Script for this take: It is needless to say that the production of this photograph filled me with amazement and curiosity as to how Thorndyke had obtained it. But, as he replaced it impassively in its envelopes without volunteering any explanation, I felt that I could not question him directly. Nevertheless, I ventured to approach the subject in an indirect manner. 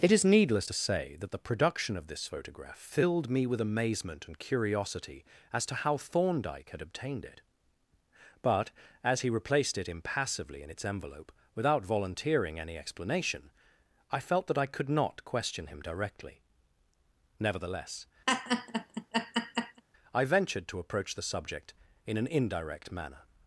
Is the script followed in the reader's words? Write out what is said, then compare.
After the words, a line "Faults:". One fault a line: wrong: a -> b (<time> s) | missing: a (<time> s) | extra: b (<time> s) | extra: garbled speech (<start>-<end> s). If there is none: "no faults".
It is needless to say that the production of this photograph filled me with amazement and curiosity as to how Thorndyke had obtained it. But, as he replaced it impassively in its envelope without volunteering any explanation, I felt that I could not question him directly. Nevertheless, I ventured to approach the subject in an indirect manner.
Faults:
wrong: envelopes -> envelope (10.8 s)